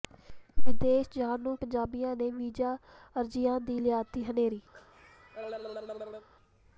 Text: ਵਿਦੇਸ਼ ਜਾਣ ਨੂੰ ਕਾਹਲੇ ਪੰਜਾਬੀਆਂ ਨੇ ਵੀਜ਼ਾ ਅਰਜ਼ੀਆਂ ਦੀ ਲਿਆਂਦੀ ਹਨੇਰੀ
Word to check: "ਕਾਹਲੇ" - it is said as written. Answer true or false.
false